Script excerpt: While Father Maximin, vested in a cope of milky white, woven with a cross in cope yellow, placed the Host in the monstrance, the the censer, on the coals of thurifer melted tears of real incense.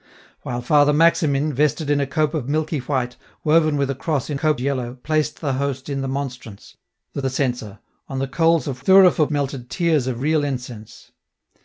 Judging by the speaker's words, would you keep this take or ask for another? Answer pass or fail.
pass